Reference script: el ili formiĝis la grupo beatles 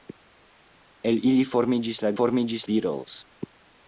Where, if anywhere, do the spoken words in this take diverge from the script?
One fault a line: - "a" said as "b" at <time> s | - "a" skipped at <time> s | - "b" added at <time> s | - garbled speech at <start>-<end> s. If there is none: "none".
- "grupo" said as "formiĝis" at 2.1 s